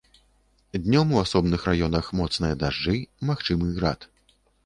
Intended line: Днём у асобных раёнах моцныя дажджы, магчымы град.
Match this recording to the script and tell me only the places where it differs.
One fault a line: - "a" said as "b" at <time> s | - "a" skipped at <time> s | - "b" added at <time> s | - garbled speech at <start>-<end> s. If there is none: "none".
none